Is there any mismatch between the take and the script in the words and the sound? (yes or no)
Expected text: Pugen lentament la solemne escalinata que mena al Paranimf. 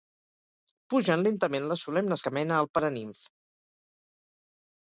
yes